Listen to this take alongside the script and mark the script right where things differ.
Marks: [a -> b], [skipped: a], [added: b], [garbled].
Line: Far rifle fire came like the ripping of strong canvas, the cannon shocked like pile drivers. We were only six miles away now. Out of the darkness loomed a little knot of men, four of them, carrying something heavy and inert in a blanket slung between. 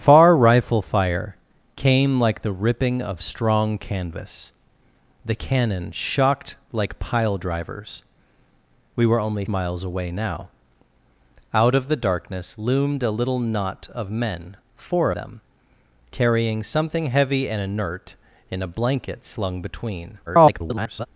Far rifle fire came like the ripping of strong canvas, the cannon shocked like pile drivers. We were only [skipped: six] miles away now. Out of the darkness loomed a little knot of men, four [skipped: of] them, carrying something heavy and inert in a blanket slung between. [garbled]